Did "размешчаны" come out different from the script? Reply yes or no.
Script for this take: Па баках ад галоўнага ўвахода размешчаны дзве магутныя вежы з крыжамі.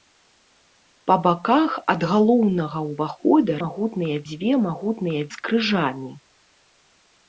yes